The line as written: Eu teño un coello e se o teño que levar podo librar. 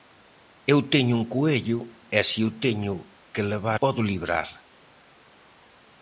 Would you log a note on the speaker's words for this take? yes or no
no